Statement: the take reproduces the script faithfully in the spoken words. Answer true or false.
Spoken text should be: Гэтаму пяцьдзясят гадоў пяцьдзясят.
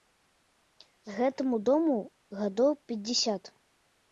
false